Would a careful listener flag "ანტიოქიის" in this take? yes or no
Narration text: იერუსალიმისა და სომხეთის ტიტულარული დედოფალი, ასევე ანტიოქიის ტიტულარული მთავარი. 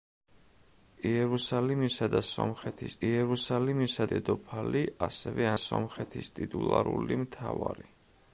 yes